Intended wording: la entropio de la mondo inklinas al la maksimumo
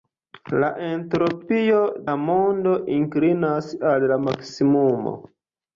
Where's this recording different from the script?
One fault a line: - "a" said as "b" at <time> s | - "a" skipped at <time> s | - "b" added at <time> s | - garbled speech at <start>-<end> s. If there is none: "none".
- "de" skipped at 1.8 s